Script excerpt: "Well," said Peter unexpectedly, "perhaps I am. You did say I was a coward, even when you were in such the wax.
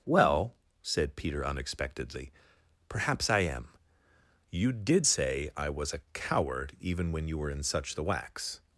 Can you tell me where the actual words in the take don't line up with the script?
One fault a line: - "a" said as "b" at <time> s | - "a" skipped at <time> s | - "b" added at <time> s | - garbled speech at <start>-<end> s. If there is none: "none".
none